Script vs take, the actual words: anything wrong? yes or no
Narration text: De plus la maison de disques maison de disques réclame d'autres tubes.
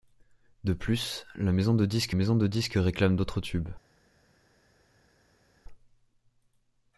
no